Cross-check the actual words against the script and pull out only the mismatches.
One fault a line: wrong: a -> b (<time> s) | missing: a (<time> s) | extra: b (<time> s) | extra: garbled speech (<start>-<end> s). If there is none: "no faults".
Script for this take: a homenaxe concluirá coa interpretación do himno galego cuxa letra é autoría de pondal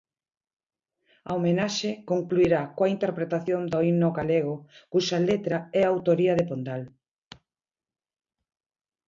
no faults